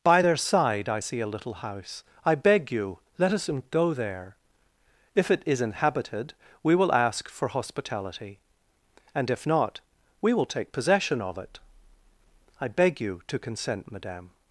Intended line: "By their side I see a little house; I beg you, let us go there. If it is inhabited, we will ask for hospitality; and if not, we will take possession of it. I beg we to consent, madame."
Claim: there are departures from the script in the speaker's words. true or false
true